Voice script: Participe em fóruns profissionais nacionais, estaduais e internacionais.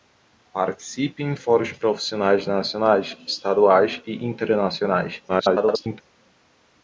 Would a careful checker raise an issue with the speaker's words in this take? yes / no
yes